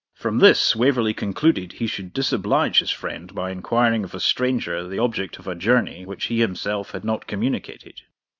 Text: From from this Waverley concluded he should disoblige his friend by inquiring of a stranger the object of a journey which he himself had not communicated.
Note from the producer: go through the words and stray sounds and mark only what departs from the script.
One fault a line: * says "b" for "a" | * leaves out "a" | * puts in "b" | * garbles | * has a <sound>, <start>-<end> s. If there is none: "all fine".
* leaves out "from"